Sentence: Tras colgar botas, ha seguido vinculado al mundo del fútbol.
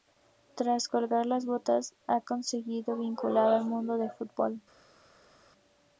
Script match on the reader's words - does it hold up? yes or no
no